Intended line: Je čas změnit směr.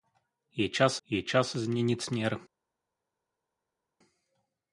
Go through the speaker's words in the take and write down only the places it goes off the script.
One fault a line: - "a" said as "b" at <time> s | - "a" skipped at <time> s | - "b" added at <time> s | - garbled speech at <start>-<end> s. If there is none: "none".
- "je čas" added at 1.0 s